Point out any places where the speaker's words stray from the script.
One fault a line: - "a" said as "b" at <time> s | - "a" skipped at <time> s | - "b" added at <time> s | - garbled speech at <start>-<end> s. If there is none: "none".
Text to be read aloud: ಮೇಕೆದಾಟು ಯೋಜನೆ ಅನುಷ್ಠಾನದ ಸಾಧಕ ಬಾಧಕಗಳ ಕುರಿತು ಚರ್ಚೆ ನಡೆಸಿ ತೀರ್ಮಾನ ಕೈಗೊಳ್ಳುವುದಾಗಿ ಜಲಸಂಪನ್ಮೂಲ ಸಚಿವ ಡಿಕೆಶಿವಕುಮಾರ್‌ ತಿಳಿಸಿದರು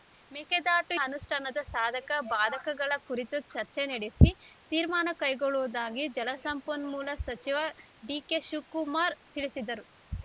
- "ಯೋಜನೆ" skipped at 0.9 s